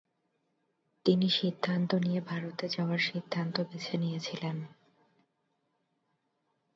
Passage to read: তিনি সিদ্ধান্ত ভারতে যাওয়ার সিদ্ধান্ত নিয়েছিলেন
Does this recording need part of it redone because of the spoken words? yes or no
yes